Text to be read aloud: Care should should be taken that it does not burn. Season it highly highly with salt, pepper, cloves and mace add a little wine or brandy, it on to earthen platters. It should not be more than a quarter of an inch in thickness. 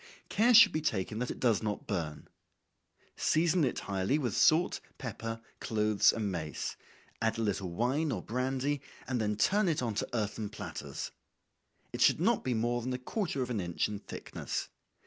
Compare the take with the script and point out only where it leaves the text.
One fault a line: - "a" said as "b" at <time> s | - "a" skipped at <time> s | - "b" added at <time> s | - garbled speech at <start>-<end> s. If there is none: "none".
- "should" skipped at 0.7 s
- "highly" skipped at 4.2 s
- "and then turn" added at 9.1 s